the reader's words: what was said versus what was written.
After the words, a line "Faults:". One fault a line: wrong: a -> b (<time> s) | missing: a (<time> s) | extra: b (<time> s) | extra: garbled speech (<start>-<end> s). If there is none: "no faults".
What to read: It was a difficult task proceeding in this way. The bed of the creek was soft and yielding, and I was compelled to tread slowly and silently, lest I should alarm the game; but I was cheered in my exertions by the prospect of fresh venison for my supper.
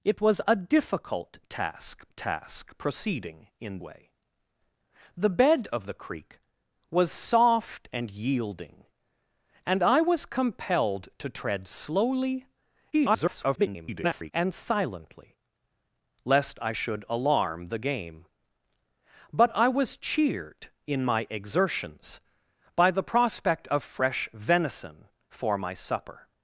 It was a difficult task task proceeding in way. The bed of the creek was soft and yielding, and I was compelled to tread slowly [garbled] and silently, lest I should alarm the game; but I was cheered in my exertions by the prospect of fresh venison for my supper.
Faults:
extra: task (2.1 s)
missing: this (3.8 s)
extra: garbled speech (12.9-14.3 s)